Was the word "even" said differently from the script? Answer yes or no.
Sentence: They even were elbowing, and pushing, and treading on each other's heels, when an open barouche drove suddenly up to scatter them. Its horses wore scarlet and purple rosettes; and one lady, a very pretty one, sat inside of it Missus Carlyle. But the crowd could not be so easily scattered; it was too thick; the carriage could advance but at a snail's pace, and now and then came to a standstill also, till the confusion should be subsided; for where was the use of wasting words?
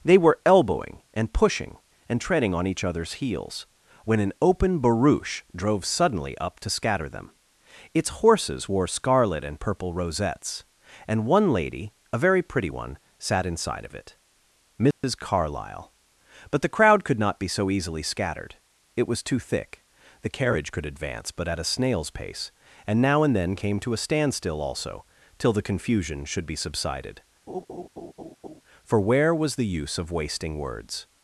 yes